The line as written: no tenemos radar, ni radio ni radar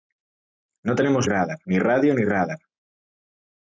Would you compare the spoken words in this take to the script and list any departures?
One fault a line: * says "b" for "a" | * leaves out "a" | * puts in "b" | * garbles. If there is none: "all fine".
all fine